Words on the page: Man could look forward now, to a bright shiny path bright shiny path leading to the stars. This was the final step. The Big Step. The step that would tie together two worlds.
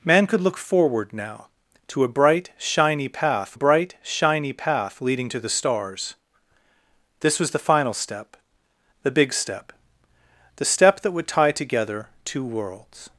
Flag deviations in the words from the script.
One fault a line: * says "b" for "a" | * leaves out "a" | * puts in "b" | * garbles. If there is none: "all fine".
all fine